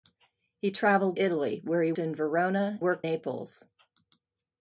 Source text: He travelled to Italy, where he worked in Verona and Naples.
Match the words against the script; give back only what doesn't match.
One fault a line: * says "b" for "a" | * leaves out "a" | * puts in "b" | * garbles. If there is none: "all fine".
* leaves out "to"
* leaves out "worked"
* says "worked" for "and"